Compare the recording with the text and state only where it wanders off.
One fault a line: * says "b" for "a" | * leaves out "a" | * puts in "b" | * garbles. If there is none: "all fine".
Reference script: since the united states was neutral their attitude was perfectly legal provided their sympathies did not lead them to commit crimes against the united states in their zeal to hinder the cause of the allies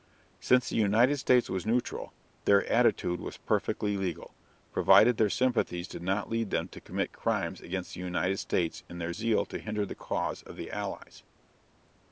all fine